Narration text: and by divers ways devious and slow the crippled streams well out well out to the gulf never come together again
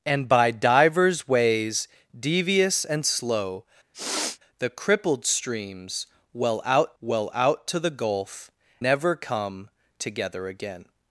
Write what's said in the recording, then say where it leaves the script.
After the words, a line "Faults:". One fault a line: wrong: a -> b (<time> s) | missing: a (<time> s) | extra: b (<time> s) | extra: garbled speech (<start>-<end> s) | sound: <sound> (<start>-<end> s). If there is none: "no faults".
and by divers ways devious and slow the crippled streams well out well out to the gulf never come together again
Faults:
sound: sniff (3.9-4.4 s)